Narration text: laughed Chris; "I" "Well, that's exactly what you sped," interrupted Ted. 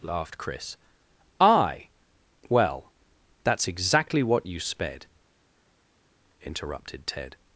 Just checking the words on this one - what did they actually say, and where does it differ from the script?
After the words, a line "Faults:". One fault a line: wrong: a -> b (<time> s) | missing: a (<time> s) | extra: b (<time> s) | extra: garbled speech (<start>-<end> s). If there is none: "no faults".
laughed Chris; "I" "Well, that's exactly what you sped," interrupted Ted.
Faults:
no faults